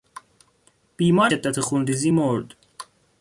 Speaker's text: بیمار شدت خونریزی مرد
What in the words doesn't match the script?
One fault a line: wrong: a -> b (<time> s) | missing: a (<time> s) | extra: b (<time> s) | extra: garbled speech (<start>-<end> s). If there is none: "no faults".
no faults